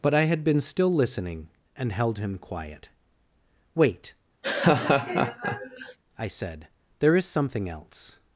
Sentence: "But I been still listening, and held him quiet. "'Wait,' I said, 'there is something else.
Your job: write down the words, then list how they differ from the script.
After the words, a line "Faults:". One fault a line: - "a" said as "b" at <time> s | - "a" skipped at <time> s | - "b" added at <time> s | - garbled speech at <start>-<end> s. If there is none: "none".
"But I had been still listening, and held him quiet. "'Wait,' I said, 'there is something else.
Faults:
- "had" added at 0.2 s